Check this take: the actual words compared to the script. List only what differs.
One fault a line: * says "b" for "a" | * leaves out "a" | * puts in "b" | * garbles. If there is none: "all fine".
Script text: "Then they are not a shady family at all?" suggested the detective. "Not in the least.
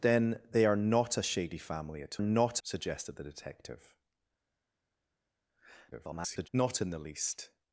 * says "not" for "all"
* garbles